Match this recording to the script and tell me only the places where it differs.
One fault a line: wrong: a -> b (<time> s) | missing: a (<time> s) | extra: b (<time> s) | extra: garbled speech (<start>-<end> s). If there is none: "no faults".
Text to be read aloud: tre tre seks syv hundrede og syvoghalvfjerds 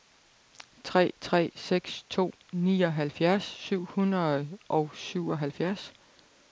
extra: to nioghalvfjerds (2.1 s)